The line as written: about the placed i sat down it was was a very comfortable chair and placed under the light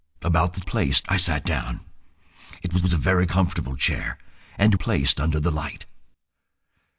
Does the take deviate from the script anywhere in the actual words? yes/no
no